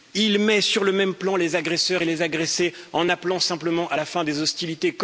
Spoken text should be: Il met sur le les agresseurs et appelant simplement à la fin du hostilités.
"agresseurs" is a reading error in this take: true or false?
false